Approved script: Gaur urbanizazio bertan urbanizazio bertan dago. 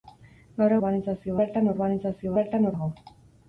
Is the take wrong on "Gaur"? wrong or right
right